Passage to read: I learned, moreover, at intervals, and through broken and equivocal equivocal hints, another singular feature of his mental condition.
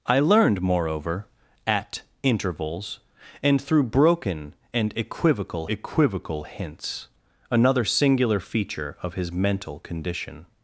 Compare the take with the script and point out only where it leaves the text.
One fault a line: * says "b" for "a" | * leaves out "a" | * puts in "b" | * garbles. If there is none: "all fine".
all fine